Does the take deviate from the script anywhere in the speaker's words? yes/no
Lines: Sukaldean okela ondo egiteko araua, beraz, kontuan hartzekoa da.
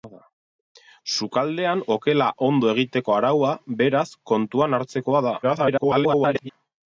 yes